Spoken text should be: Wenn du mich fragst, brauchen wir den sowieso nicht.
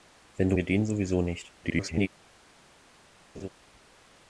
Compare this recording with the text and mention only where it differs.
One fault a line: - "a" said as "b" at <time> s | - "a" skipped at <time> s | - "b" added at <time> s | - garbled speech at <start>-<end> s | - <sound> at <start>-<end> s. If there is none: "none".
- "mich fragst brauchen" skipped at 0.6 s
- garbled speech at 1.6-2.1 s
- laugh at 3.3-3.5 s